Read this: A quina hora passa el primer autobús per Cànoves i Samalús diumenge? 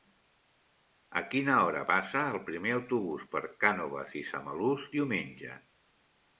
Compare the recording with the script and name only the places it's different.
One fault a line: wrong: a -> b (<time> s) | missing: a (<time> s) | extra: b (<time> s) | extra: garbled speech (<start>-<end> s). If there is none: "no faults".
no faults